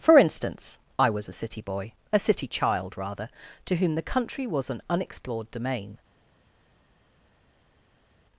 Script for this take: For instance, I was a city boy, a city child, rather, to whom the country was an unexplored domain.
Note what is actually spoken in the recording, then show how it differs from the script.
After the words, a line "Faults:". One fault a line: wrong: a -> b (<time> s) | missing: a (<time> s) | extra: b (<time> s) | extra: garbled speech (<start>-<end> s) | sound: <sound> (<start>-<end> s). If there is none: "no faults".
For instance, I was a city boy, a city child, rather, to whom the country was an unexplored domain.
Faults:
no faults